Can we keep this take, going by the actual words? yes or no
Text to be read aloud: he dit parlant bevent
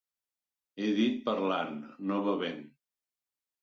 no